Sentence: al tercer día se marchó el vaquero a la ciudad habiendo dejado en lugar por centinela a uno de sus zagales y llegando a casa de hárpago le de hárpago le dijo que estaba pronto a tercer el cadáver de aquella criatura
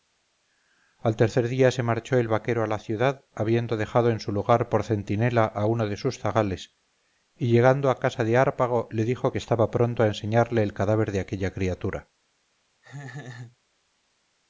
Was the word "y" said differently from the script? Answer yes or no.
no